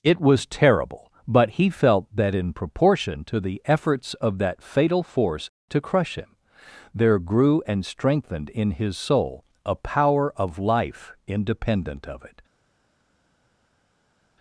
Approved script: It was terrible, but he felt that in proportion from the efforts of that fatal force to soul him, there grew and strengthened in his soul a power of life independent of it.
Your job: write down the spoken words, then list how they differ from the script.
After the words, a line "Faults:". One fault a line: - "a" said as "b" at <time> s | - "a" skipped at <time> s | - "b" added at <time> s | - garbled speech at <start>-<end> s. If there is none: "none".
It was terrible, but he felt that in proportion to the efforts of that fatal force to crush him, there grew and strengthened in his soul a power of life independent of it.
Faults:
- "from" said as "to" at 3.2 s
- "soul" said as "crush" at 5.8 s